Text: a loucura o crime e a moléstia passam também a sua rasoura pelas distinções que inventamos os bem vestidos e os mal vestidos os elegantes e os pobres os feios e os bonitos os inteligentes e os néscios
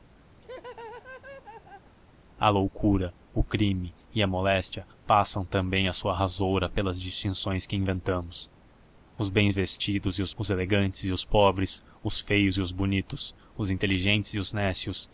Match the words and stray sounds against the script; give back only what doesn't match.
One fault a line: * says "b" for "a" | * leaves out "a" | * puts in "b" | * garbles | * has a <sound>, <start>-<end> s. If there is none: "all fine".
* has a laugh, 0.4-1.9 s
* leaves out "mal vestidos"